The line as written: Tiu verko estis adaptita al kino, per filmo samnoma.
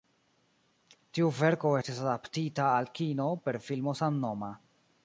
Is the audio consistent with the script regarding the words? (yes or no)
yes